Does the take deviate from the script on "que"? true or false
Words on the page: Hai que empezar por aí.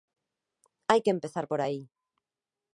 false